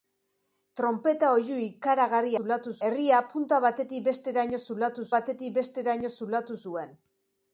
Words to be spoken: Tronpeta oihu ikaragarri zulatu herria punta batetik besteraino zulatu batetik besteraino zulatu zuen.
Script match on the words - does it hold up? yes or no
yes